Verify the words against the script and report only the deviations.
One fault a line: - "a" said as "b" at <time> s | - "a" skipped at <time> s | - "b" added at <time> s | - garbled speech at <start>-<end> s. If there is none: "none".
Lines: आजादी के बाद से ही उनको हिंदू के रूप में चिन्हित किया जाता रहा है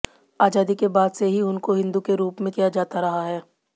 - "चिन्हित" skipped at 2.5 s